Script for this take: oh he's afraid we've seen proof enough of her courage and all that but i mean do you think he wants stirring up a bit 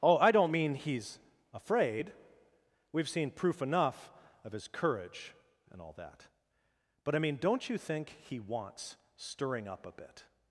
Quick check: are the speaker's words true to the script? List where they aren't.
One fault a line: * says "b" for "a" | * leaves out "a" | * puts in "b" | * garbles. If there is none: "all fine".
* puts in "i don't mean"
* says "his" for "her"
* says "don't" for "do"